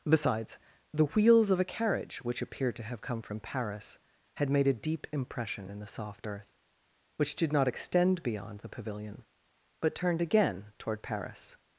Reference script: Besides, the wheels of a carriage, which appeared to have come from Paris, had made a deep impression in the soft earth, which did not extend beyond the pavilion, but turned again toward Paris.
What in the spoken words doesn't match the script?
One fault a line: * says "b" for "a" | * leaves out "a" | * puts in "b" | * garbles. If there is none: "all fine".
all fine